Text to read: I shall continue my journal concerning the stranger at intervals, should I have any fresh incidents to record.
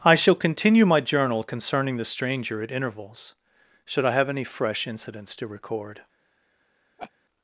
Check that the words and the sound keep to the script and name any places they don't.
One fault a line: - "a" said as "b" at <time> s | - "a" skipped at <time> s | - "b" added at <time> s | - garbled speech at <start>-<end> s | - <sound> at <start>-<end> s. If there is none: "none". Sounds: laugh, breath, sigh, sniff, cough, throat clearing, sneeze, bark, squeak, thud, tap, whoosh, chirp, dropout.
- laugh at 7.0-7.1 s